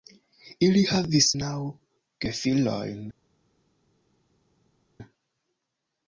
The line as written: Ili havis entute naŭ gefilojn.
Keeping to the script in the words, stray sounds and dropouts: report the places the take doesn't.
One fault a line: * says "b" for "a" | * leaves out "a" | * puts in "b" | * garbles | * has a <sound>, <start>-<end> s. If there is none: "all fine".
* leaves out "entute"